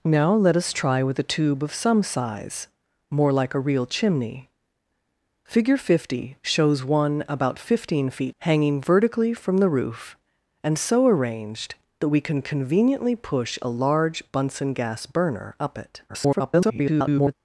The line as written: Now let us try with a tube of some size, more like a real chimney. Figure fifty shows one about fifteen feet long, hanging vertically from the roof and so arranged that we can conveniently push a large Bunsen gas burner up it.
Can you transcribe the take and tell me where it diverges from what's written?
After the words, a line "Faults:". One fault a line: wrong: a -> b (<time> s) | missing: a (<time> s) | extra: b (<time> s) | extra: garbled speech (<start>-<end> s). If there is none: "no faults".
Now let us try with a tube of some size, more like a real chimney. Figure fifty shows one about fifteen feet hanging vertically from the roof and so arranged that we can conveniently push a large Bunsen gas burner up it. [garbled]
Faults:
missing: long (8.3 s)
extra: garbled speech (16.1-17.3 s)